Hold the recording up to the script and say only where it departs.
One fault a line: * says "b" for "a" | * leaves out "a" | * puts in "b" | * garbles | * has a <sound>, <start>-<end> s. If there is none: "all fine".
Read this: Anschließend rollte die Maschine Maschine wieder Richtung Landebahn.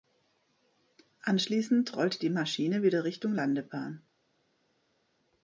* leaves out "Maschine"